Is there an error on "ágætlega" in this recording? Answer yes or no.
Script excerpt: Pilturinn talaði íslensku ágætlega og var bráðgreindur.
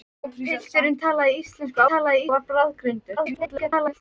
yes